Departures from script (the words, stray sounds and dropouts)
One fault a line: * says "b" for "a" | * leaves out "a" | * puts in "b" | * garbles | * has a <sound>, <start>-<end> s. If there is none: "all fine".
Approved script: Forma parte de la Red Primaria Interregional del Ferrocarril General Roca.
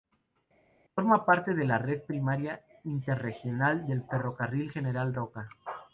all fine